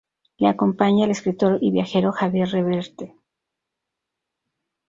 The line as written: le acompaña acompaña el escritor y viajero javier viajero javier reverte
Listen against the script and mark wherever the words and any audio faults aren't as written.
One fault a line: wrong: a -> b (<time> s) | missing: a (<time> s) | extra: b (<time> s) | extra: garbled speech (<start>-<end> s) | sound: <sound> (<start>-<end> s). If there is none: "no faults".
missing: acompaña (1.1 s)
missing: viajero javier (2.5 s)